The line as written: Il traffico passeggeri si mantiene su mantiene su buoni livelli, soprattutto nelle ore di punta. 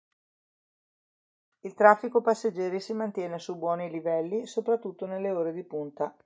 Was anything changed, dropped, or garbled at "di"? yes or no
no